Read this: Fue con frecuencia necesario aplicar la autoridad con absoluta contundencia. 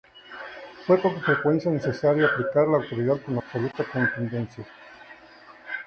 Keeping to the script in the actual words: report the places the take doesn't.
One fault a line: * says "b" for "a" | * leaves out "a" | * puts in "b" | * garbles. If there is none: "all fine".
all fine